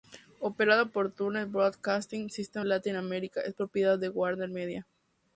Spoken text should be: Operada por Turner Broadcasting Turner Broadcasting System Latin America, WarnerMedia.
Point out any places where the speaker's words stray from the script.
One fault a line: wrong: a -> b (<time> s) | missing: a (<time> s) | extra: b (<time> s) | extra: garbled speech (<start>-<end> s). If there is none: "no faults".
missing: Turner Broadcasting (2.3 s)
extra: es propiedad de (3.4 s)